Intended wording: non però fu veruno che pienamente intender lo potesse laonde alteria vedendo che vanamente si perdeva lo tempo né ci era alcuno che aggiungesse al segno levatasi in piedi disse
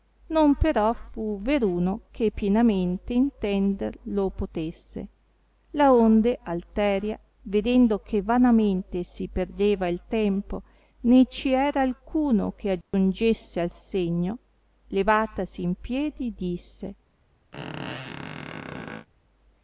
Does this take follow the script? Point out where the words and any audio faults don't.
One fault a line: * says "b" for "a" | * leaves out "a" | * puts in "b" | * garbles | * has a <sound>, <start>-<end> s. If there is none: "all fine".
* says "il" for "lo"
* has a dropout, 12.8-12.9 s
* has a squeak, 17.5-19.1 s